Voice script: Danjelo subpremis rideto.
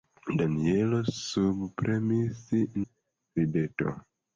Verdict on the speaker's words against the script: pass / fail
pass